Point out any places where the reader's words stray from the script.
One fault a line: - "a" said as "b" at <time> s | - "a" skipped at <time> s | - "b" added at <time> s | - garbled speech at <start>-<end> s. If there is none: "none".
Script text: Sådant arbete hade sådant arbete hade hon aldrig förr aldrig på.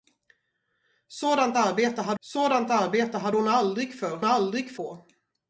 none